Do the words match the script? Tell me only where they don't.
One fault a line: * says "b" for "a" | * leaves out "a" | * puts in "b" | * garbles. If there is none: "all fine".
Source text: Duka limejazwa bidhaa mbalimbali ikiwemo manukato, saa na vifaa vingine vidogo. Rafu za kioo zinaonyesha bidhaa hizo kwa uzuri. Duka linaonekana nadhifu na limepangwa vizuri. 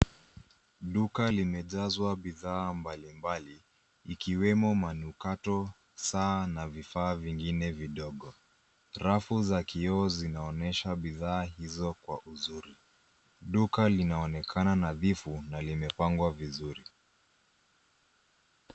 all fine